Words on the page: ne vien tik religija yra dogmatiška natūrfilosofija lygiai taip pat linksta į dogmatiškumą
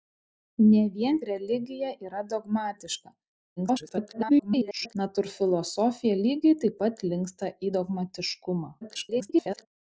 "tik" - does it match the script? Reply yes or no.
no